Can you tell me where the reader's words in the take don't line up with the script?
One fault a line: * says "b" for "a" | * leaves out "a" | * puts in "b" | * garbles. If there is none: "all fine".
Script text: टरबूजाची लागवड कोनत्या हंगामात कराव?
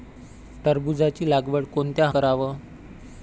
* leaves out "हंगामात"